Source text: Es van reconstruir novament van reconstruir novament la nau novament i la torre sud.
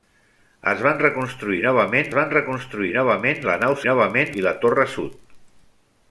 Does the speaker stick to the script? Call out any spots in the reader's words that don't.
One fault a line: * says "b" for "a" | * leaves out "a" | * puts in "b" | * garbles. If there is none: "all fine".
all fine